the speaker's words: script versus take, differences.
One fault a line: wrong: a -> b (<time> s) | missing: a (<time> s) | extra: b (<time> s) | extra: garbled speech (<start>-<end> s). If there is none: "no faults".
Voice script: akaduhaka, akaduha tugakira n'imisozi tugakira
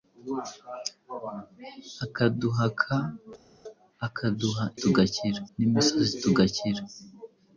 no faults